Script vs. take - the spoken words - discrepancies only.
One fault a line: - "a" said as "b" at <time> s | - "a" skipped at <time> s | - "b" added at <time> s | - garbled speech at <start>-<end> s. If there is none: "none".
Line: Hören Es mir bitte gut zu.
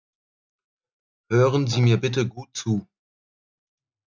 - "Es" said as "Sie" at 1.7 s